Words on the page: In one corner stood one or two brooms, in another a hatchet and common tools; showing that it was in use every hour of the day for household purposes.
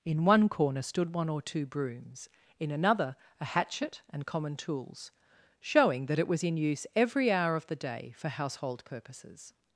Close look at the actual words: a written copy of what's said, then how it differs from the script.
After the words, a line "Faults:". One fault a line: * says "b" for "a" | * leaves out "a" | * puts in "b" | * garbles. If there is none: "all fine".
In one corner stood one or two brooms, in another a hatchet and common tools; showing that it was in use every hour of the day for household purposes.
Faults:
all fine